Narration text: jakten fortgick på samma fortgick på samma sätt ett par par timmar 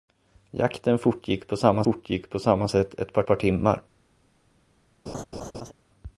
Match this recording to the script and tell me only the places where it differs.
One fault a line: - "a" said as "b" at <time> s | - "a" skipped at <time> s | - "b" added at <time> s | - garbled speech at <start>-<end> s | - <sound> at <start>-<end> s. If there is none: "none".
- laugh at 5.1-5.7 s